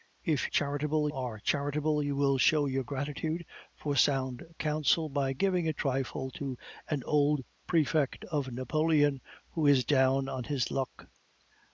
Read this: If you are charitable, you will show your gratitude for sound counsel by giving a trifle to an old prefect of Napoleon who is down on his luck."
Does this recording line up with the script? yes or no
no